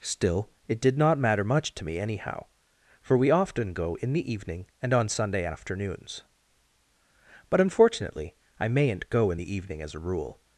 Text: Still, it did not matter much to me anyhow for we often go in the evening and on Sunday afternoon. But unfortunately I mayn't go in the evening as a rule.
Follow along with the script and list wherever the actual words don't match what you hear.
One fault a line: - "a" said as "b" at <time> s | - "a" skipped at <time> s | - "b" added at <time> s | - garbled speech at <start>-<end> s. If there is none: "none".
- "afternoon" said as "afternoons" at 5.4 s